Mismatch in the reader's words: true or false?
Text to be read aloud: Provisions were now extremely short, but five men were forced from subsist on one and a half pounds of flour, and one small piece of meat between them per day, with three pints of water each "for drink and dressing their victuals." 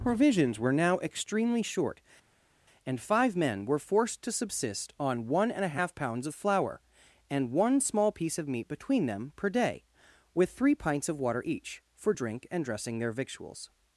true